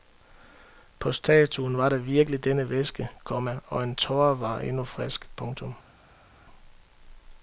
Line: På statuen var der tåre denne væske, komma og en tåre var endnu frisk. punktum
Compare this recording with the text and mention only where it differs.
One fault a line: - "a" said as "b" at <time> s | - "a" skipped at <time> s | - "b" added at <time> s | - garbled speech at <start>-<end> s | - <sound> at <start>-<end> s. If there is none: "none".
- "tåre" said as "virkelig" at 2.0 s